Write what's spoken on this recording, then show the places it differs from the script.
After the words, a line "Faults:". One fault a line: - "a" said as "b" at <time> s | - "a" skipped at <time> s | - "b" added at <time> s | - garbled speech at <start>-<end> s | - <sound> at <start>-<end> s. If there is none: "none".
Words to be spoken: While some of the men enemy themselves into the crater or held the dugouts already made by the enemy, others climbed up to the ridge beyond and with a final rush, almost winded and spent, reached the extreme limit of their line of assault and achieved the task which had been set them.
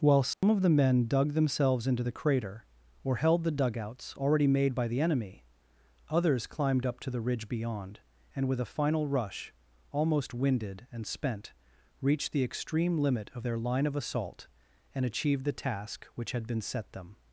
While some of the men dug themselves into the crater or held the dugouts already made by the enemy, others climbed up to the ridge beyond and with a final rush, almost winded and spent, reached the extreme limit of their line of assault and achieved the task which had been set them.
Faults:
- dropout at 0.3-0.4 s
- "enemy" said as "dug" at 1.1 s